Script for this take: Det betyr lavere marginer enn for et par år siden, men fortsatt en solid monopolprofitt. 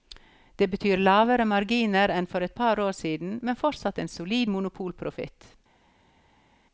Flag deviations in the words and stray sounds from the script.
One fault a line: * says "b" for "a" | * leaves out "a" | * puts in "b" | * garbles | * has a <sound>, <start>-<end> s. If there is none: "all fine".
all fine